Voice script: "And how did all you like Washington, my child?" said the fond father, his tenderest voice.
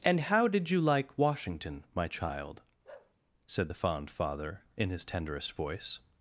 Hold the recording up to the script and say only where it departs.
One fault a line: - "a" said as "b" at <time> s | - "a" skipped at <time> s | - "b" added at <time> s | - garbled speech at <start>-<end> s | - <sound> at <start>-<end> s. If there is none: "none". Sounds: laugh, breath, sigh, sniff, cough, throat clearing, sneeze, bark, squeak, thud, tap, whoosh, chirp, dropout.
- "all" skipped at 0.7 s
- bark at 2.8-3.1 s
- "in" added at 4.8 s